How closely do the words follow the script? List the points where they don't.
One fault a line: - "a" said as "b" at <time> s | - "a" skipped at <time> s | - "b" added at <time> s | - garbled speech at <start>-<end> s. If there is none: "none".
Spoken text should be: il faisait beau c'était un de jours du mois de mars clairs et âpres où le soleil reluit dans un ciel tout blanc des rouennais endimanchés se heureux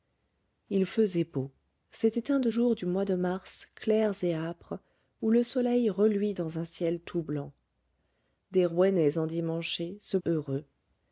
none